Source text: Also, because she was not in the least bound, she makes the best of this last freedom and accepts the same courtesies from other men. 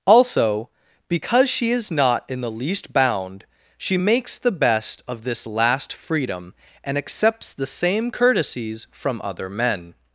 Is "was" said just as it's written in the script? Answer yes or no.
no